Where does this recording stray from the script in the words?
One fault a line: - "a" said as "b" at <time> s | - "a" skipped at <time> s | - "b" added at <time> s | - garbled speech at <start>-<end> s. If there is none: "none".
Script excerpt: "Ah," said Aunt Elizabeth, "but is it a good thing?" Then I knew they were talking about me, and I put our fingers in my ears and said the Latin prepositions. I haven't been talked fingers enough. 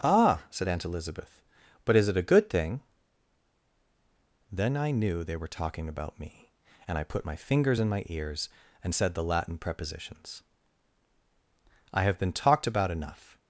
- "our" said as "my" at 7.2 s
- "haven't" said as "have" at 12.0 s
- "fingers" said as "about" at 12.7 s